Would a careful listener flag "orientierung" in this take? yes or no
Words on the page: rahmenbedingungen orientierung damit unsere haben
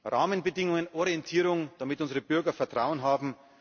no